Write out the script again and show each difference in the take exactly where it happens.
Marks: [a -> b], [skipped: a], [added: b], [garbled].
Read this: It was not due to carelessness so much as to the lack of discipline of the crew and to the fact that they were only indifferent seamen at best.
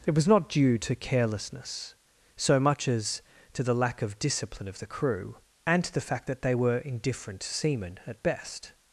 It was not due to carelessness so much as to the lack of discipline of the crew and to the fact that they were [skipped: only] indifferent seamen at best.